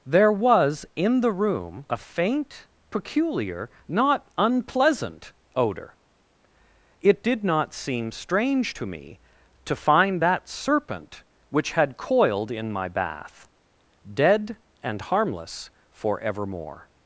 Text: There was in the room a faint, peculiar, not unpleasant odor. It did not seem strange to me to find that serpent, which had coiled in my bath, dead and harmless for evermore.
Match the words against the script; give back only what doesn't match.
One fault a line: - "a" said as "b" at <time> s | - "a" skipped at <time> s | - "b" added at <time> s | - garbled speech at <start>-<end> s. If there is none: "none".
none